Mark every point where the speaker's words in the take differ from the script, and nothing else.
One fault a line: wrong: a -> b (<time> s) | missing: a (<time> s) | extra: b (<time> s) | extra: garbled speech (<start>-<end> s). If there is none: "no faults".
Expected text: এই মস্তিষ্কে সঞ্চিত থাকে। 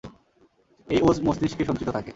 extra: ওজ (1.0 s)